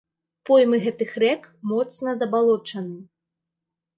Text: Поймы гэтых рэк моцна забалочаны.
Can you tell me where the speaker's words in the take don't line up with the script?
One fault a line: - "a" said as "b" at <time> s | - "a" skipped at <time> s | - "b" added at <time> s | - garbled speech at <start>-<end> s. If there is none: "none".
none